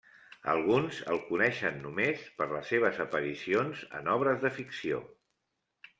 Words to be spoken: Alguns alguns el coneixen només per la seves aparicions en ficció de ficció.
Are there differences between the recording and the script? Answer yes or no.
yes